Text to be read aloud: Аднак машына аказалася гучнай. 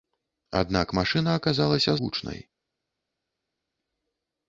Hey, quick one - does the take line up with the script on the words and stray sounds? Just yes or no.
yes